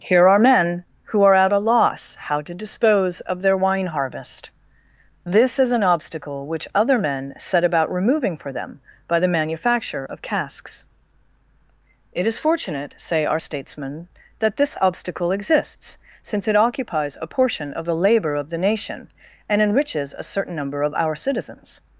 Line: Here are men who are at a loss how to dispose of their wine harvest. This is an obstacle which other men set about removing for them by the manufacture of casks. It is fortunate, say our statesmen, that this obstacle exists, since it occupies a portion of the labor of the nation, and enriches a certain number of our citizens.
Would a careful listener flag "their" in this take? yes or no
no